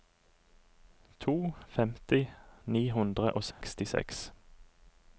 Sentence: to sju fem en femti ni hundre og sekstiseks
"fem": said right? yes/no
no